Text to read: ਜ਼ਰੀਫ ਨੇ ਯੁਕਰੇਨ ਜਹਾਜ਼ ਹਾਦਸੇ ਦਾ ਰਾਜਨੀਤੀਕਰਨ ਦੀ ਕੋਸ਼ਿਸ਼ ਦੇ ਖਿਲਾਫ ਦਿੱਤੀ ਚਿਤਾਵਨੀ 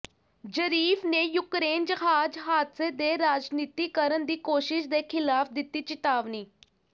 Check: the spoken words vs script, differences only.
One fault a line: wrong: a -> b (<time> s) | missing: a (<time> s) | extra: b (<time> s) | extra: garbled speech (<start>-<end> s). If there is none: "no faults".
wrong: ਦਾ -> ਦੇ (2.9 s)